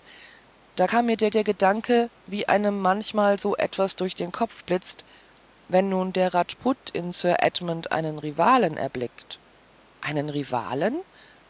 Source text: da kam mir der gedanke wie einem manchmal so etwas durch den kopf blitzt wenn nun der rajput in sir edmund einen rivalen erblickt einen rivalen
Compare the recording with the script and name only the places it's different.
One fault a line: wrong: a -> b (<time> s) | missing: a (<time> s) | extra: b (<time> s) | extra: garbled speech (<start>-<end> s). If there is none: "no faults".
extra: der (1.3 s)